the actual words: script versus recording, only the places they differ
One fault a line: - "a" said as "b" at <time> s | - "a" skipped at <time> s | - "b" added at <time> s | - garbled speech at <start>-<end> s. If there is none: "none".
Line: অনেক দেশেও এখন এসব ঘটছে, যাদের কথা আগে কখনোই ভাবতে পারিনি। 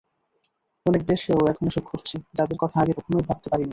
none